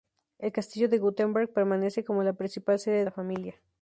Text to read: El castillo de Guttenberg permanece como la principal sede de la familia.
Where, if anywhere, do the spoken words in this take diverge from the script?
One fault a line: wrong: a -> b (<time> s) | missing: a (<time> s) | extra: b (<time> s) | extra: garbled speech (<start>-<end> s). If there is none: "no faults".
missing: de (3.0 s)